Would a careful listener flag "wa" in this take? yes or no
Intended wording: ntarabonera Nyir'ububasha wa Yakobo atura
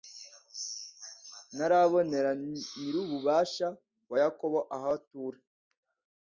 no